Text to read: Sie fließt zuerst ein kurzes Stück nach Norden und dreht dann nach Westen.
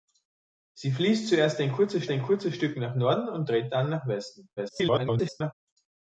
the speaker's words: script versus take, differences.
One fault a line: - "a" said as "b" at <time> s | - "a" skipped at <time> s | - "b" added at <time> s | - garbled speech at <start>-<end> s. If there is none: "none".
- "ein kurzes" added at 2.1 s
- garbled speech at 4.6-5.5 s